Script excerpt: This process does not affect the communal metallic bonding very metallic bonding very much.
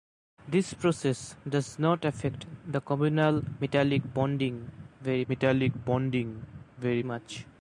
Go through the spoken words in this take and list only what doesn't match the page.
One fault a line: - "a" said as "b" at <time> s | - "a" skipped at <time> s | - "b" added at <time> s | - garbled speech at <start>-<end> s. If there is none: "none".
none